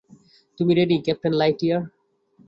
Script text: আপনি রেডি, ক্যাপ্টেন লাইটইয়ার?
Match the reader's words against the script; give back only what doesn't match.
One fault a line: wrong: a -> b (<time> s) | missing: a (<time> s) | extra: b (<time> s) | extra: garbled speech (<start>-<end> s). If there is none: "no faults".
wrong: আপনি -> তুমি (0.6 s)